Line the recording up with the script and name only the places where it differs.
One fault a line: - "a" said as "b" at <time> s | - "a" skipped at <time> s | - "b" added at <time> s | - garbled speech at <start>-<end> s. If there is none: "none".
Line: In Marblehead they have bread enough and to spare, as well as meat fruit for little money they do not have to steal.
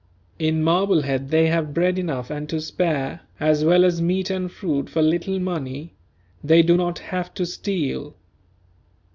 - "and" added at 4.3 s